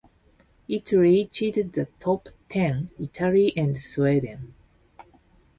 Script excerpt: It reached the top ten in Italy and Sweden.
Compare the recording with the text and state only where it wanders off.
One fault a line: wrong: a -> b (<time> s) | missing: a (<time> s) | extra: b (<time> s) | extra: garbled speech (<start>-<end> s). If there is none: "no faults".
missing: in (2.9 s)